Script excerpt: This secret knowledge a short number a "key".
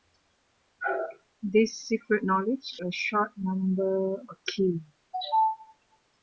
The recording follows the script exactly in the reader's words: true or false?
true